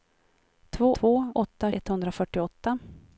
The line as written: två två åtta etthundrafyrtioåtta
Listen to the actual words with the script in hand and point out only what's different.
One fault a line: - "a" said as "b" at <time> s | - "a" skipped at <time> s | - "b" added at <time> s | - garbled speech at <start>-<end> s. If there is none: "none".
none